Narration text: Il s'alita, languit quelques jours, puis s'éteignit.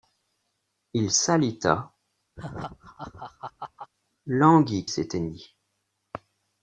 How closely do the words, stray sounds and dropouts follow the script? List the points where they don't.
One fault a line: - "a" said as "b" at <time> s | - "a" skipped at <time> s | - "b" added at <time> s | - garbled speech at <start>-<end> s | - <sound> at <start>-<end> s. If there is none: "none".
- laugh at 2.4-3.9 s
- "quelques jours puis" skipped at 4.9 s